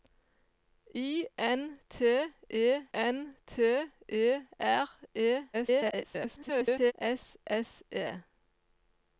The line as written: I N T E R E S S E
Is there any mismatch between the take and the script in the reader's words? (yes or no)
yes